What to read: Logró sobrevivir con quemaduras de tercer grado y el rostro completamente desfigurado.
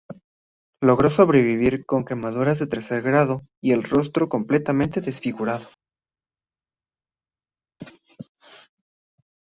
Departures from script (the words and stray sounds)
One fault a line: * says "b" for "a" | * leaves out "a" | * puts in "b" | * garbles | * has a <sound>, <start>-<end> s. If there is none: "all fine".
all fine